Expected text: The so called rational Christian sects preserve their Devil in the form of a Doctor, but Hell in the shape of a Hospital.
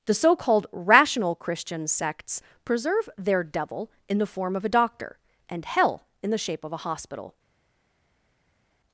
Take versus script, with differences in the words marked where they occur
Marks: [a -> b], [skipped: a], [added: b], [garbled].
The so called rational Christian sects preserve their Devil in the form of a Doctor, [but -> and] Hell in the shape of a Hospital.